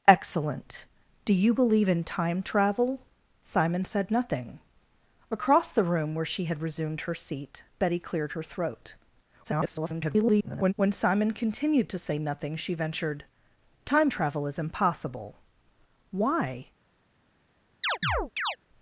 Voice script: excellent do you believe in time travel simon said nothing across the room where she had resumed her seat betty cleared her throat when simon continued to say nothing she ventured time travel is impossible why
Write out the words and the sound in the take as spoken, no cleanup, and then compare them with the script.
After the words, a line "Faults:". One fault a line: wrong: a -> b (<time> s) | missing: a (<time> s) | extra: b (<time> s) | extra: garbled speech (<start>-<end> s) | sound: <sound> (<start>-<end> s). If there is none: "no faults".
excellent do you believe in time travel simon said nothing across the room where she had resumed her seat betty cleared her throat [garbled] when simon continued to say nothing she ventured time travel is impossible why
Faults:
extra: garbled speech (9.4-10.7 s)
sound: chirp (17.8-18.6 s)